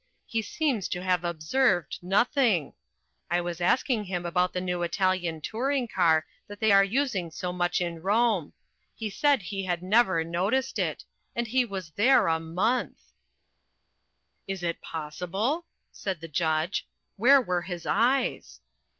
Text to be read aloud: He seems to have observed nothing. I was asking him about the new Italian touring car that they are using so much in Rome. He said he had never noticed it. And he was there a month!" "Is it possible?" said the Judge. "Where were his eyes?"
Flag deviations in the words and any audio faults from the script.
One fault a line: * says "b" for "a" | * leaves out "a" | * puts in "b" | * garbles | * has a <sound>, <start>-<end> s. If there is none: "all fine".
all fine